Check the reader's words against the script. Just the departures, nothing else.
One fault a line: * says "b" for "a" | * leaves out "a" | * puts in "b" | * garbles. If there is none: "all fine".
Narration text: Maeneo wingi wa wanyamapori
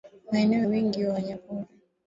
all fine